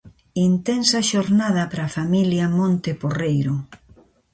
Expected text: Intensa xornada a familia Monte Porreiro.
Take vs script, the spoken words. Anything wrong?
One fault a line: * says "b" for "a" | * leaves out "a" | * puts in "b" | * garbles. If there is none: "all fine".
* puts in "para"